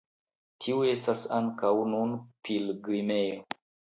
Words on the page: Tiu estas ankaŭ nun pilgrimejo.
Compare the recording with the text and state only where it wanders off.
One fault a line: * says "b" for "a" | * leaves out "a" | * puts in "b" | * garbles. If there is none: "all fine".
all fine